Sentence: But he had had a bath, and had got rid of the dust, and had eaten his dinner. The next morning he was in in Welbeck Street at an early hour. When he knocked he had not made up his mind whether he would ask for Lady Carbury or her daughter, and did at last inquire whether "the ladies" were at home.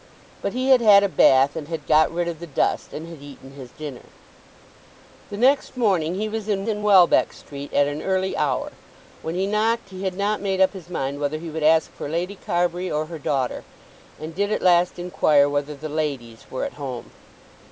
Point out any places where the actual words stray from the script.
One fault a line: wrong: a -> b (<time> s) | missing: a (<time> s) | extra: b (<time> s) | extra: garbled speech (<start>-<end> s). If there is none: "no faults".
no faults